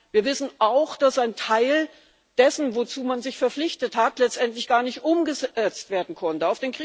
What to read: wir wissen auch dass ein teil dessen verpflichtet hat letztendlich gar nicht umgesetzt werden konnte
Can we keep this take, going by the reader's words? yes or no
no